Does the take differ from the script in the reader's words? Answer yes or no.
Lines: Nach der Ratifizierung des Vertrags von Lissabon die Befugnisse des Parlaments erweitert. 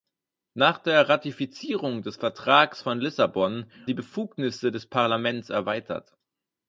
no